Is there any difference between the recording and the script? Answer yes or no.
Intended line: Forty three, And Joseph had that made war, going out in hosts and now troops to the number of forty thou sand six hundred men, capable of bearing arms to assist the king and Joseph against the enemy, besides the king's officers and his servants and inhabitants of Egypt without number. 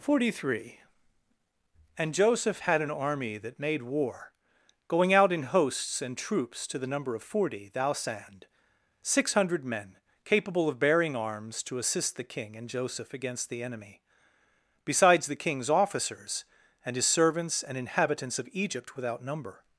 yes